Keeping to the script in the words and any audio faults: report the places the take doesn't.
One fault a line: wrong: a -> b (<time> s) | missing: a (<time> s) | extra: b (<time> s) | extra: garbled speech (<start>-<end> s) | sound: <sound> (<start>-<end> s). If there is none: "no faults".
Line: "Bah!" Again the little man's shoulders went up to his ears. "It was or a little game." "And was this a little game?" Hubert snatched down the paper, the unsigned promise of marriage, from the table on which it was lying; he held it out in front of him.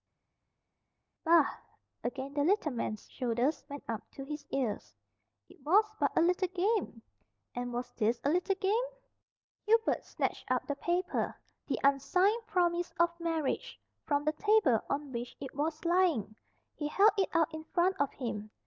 wrong: or -> but (6.0 s)
wrong: down -> up (10.5 s)